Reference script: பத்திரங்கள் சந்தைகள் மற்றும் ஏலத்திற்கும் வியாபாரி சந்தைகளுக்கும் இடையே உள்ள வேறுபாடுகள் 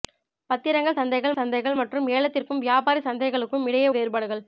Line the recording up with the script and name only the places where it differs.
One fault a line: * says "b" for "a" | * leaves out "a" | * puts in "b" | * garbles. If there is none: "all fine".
* puts in "சந்தைகள்"
* leaves out "உள்ள"